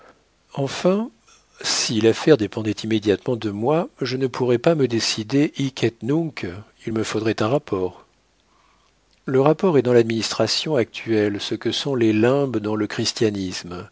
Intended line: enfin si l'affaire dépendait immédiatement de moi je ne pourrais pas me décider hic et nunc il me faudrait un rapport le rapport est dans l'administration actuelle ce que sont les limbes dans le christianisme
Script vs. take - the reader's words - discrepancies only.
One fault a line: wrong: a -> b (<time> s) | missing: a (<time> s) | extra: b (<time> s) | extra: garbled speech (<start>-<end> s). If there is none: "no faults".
no faults